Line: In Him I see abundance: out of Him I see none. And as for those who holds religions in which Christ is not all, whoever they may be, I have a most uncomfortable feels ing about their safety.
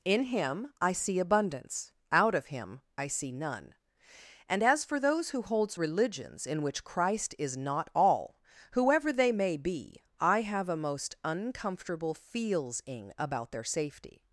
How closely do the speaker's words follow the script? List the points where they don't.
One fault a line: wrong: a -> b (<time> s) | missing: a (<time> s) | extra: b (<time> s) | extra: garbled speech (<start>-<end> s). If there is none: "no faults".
no faults